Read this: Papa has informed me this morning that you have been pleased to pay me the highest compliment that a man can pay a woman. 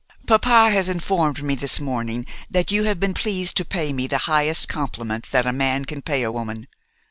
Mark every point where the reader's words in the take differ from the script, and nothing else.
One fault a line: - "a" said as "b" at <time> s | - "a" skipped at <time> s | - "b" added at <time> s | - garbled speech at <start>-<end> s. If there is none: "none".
none